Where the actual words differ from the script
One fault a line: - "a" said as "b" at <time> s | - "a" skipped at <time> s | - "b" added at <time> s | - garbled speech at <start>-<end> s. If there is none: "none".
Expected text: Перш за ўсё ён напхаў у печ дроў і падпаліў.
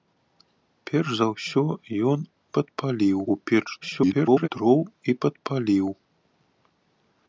- "напхаў" said as "падпаліў" at 2.6 s
- garbled speech at 3.8-4.5 s